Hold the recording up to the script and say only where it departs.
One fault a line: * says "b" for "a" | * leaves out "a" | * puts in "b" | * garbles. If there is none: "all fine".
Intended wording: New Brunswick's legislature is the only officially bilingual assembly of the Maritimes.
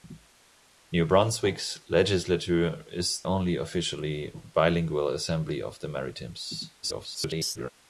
* leaves out "the"
* garbles